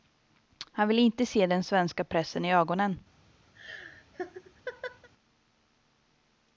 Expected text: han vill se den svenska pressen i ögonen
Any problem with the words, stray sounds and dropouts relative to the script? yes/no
yes